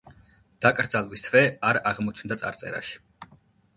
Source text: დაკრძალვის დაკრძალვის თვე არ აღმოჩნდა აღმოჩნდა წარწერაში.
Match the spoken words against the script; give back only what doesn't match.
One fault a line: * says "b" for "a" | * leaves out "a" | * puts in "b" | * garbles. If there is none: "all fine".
* leaves out "დაკრძალვის"
* leaves out "აღმოჩნდა"